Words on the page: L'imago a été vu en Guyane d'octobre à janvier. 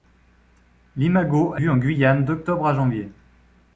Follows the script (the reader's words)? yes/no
no